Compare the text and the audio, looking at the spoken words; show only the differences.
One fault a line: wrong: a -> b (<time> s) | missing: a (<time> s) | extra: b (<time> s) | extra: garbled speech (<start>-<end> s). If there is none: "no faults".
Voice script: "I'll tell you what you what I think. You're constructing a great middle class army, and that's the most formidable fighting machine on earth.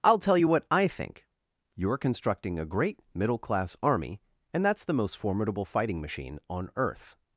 missing: you what (0.7 s)